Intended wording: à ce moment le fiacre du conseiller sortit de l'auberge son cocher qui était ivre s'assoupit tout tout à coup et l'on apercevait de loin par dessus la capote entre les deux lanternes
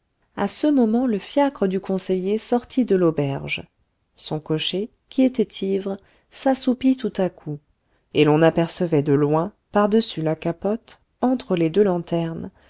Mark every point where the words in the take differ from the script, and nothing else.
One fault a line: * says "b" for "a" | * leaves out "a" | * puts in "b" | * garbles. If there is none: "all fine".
* leaves out "tout"